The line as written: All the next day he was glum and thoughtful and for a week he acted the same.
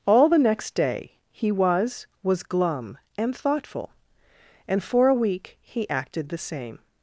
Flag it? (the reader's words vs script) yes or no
yes